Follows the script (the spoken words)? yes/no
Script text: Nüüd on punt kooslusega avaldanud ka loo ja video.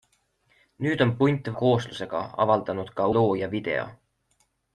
yes